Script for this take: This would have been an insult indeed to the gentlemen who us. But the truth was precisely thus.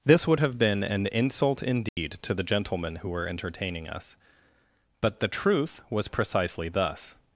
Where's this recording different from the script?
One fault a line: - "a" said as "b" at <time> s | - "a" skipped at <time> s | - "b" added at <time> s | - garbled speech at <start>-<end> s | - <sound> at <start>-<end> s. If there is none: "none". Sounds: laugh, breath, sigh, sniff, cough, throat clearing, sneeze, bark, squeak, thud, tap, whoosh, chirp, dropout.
- dropout at 1.9-2.0 s
- "were entertaining" added at 3.1 s